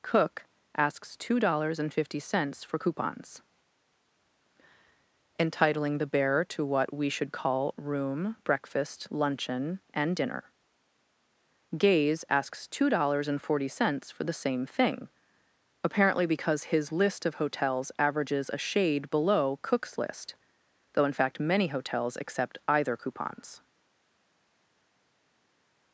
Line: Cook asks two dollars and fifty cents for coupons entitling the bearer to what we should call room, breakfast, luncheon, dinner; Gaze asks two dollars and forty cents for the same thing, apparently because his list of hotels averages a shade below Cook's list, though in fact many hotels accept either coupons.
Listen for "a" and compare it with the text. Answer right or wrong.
right